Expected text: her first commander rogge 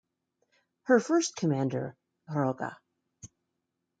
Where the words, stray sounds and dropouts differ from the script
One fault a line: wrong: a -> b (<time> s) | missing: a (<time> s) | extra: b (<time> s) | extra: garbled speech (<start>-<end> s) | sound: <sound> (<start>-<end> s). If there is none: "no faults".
no faults